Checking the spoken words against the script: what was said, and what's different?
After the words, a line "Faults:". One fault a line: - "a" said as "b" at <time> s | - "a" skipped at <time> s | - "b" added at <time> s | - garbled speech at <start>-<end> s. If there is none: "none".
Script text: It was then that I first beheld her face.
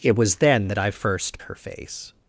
It was then that I first her face.
Faults:
- "beheld" skipped at 1.4 s